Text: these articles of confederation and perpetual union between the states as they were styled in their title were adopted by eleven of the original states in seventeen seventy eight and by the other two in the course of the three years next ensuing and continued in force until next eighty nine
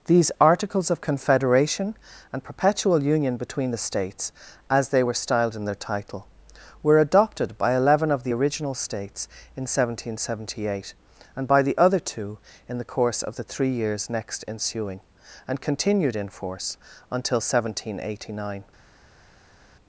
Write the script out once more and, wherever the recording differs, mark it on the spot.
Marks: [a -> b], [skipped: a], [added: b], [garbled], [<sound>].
these articles of confederation and perpetual union between the states as they were styled in their title were adopted by eleven of the original states in seventeen seventy eight and by the other two in the course of the three years next ensuing and continued in force until [next -> seventeen] eighty nine